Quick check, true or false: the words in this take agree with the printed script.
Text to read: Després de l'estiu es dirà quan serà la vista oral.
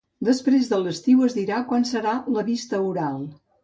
true